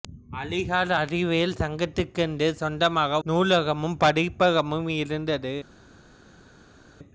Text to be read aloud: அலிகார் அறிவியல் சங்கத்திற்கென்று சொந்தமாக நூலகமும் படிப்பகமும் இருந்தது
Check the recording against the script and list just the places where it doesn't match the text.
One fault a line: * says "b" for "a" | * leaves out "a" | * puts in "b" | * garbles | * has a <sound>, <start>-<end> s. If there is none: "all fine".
all fine